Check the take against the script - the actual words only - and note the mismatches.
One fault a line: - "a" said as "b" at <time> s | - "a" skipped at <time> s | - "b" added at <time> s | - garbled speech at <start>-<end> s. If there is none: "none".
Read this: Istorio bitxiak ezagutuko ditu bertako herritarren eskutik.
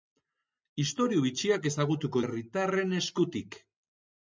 - "ditu bertako" skipped at 2.2 s